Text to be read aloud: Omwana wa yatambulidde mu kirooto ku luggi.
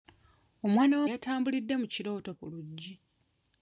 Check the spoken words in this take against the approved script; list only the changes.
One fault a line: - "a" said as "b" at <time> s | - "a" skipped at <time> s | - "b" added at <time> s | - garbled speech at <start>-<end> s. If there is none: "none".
none